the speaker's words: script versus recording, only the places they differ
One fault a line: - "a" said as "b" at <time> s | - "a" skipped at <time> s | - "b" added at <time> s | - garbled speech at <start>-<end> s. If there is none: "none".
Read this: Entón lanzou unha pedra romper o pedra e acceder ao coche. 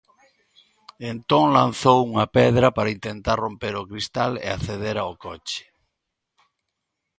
- "para intentar" added at 2.8 s
- "pedra" said as "cristal" at 3.9 s